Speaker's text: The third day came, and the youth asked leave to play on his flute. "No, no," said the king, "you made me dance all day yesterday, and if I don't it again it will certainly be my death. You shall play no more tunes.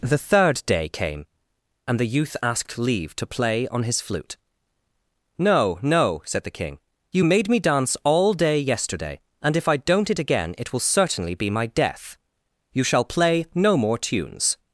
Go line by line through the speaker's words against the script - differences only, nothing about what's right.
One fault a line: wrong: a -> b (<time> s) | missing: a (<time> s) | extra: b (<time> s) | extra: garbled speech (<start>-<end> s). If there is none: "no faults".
no faults